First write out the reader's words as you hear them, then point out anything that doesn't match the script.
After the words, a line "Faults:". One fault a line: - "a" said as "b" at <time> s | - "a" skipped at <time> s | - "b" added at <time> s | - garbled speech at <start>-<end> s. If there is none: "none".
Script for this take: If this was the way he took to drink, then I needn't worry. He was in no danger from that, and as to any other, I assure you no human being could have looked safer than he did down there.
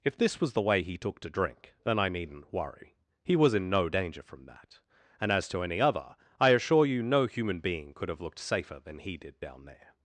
If this was the way he took to drink, then I needn't worry. He was in no danger from that, and as to any other, I assure you no human being could have looked safer than he did down there.
Faults:
none